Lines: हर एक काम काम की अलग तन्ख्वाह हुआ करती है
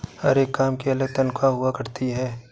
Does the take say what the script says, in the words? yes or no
no